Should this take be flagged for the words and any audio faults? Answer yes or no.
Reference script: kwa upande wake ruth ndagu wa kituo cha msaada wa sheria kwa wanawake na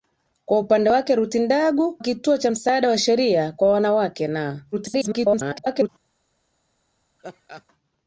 yes